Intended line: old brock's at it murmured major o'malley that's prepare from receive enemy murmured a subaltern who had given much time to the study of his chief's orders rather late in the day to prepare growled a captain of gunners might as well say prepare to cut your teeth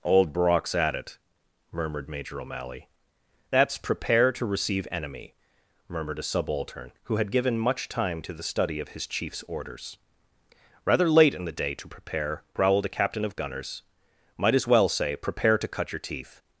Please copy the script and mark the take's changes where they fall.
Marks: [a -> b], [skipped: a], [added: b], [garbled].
old brock's at it murmured major o'malley that's prepare [from -> to] receive enemy murmured a subaltern who had given much time to the study of his chief's orders rather late in the day to prepare growled a captain of gunners might as well say prepare to cut your teeth